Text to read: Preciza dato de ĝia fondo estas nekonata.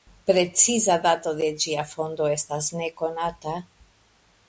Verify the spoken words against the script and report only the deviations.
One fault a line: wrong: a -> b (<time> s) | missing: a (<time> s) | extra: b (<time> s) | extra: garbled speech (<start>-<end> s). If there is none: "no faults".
no faults